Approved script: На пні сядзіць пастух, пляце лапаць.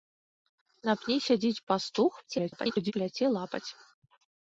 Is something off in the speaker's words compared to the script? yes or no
yes